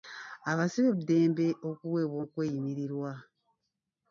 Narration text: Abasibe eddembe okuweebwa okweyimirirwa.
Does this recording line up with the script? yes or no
yes